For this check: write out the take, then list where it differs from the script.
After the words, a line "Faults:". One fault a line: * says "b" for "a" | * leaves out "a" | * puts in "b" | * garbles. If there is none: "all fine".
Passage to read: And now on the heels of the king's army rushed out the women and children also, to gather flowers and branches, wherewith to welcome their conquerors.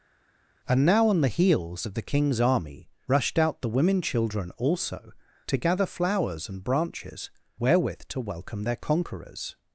And now on the heels of the king's army rushed out the women children also, to gather flowers and branches, wherewith to welcome their conquerors.
Faults:
* leaves out "and"